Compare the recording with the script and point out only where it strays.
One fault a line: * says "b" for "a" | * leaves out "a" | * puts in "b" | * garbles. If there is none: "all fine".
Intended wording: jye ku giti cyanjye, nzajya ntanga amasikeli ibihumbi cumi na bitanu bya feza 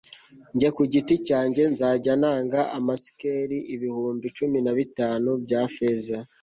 all fine